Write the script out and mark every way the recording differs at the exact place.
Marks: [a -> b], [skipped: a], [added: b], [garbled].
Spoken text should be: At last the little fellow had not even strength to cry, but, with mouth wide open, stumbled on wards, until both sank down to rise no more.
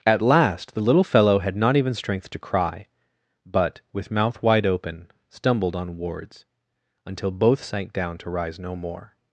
At last the little fellow had not even strength to cry, but, with mouth wide open, stumbled on wards, until both sank down to rise no more.